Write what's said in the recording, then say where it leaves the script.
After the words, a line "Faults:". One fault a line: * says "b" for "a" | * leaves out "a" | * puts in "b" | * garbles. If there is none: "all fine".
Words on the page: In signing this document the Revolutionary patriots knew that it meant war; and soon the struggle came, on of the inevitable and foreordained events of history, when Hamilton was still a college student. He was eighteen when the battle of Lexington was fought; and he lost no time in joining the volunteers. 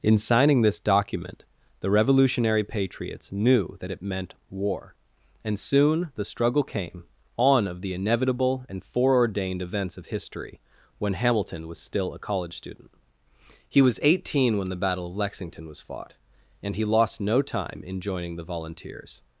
In signing this document the Revolutionary patriots knew that it meant war; and soon the struggle came, on of the inevitable and foreordained events of history, when Hamilton was still a college student. He was eighteen when the battle of Lexington was fought; and he lost no time in joining the volunteers.
Faults:
all fine